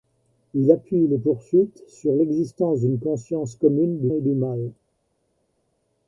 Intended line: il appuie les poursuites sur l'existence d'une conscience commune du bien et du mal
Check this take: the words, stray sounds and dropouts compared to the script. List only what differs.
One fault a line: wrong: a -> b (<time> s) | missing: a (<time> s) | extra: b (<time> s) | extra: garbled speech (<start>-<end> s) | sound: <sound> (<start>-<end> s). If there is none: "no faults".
missing: bien (4.1 s)